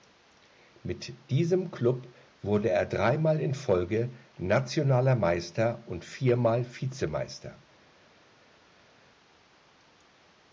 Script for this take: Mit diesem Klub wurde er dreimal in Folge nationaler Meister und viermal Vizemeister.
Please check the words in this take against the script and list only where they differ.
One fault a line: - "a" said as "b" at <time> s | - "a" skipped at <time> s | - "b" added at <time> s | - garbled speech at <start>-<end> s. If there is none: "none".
none